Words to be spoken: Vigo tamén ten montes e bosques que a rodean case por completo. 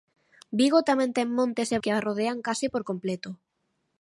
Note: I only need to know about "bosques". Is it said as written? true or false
false